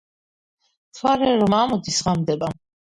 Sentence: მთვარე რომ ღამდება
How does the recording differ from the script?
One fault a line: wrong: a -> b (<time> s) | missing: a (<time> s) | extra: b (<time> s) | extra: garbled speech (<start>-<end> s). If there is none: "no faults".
extra: ამოდის (1.6 s)